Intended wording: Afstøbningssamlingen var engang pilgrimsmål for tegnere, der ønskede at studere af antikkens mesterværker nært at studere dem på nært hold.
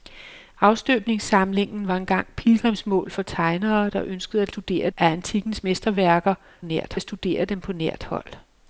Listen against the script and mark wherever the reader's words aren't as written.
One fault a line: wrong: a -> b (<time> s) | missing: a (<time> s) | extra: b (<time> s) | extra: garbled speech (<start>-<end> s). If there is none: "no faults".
no faults